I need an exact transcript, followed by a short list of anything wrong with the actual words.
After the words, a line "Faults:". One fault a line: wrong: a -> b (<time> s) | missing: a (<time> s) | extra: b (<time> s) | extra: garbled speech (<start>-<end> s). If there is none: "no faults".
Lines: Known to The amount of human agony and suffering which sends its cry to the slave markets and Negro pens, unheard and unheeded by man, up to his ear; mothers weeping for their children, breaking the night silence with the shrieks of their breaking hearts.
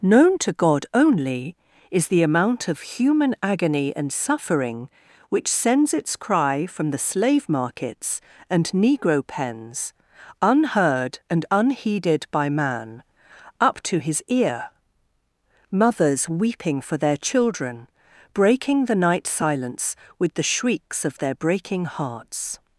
Known to God only is the amount of human agony and suffering which sends its cry from the slave markets and Negro pens, unheard and unheeded by man, up to his ear; mothers weeping for their children, breaking the night silence with the shrieks of their breaking hearts.
Faults:
extra: God only is (0.5 s)
wrong: to -> from (6.7 s)